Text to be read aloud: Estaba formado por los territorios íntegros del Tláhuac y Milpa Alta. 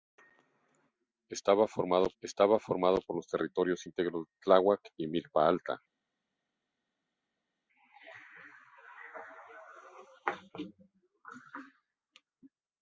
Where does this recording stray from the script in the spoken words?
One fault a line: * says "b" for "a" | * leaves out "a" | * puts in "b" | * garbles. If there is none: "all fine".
* puts in "estaba formado"
* leaves out "del"